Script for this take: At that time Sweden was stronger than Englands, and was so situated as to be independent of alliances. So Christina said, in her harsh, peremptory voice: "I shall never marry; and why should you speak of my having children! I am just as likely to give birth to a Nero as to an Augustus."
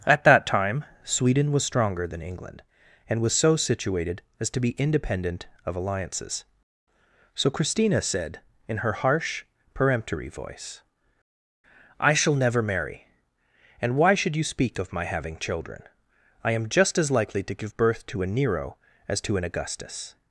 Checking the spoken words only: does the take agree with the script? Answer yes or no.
no